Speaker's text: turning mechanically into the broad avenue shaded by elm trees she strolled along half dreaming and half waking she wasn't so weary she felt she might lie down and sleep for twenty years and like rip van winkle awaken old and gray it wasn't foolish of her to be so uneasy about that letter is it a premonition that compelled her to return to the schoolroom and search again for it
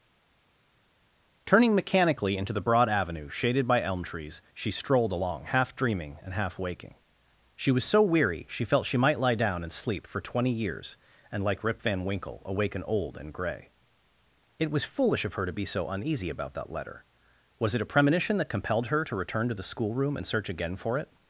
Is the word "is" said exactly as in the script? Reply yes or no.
no